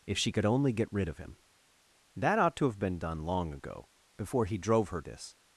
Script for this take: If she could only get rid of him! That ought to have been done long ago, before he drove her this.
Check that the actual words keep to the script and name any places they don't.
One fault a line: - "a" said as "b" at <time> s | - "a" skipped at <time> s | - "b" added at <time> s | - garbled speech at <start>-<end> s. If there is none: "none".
none